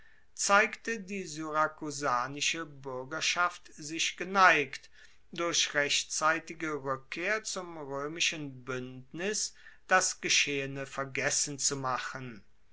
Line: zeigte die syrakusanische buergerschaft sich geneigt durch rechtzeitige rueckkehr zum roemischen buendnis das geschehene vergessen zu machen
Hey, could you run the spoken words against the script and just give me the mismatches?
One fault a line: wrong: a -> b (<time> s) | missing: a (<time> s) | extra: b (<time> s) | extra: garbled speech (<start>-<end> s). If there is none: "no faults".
no faults